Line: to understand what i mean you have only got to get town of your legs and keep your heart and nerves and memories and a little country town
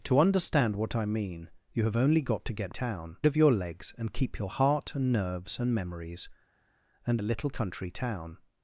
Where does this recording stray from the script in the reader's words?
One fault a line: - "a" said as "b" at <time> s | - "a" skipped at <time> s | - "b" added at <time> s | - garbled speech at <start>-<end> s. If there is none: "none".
none